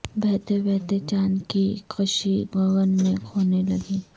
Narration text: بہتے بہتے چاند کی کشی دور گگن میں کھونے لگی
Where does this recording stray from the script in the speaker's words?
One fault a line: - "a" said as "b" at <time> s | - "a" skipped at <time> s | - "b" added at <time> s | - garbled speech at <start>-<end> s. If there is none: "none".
- "دور" skipped at 2.4 s